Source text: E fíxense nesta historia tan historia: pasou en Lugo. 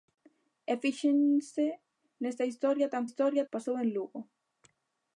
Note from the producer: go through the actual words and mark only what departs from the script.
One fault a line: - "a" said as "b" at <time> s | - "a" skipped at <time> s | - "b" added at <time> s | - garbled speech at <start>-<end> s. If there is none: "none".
none